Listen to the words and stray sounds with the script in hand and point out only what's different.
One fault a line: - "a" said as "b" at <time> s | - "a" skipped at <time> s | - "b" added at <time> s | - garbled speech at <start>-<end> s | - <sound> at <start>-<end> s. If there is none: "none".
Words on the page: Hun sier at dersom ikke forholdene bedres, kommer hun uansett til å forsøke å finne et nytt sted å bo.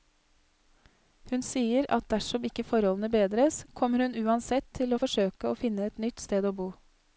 none